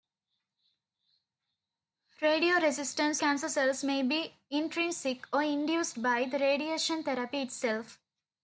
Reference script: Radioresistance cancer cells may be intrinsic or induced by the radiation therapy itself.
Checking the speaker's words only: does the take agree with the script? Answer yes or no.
yes